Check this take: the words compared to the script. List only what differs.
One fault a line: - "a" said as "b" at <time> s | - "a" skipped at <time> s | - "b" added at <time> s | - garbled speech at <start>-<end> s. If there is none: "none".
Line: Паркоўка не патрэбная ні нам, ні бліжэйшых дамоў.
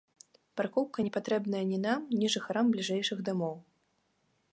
- "жыхарам" added at 2.4 s